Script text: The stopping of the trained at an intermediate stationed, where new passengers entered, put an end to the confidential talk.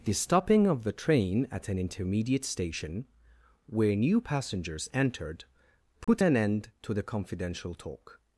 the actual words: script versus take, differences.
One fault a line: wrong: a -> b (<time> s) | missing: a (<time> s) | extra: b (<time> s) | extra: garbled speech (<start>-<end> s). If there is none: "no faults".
wrong: trained -> train (0.9 s)
wrong: stationed -> station (2.4 s)